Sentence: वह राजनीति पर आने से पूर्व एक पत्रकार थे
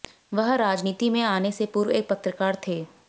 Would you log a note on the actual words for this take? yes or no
yes